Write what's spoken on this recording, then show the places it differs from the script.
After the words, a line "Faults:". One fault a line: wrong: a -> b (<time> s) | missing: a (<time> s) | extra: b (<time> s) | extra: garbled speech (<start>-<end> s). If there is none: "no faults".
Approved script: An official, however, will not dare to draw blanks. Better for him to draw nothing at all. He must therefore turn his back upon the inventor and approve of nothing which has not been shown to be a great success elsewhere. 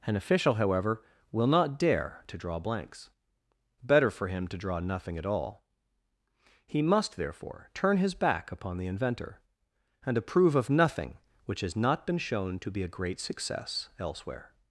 An official, however, will not dare to draw blanks. Better for him to draw nothing at all. He must therefore turn his back upon the inventor and approve of nothing which has not been shown to be a great success elsewhere.
Faults:
no faults